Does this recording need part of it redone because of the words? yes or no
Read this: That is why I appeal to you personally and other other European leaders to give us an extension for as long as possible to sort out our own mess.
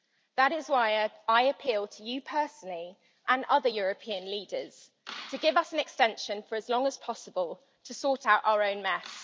yes